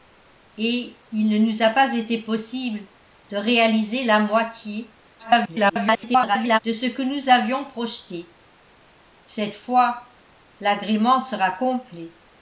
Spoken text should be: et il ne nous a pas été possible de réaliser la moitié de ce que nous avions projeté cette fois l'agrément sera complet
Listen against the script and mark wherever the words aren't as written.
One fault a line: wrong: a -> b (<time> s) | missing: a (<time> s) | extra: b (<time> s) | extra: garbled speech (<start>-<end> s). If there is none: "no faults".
extra: garbled speech (5.2-6.6 s)